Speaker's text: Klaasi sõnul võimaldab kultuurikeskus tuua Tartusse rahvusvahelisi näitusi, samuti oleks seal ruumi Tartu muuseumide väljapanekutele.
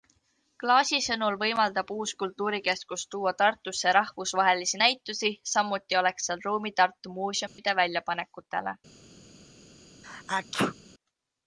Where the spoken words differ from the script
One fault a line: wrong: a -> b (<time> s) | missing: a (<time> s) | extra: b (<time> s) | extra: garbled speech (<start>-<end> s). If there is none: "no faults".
extra: uus (1.9 s)